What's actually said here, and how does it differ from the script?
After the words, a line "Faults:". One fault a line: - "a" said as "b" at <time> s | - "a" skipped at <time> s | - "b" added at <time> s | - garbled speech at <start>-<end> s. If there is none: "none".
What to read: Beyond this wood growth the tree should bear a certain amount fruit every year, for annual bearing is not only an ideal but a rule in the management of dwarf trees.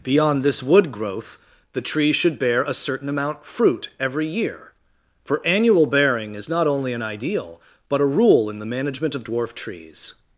Beyond this wood growth the tree should bear a certain amount fruit every year, for annual bearing is not only an ideal but a rule in the management of dwarf trees.
Faults:
none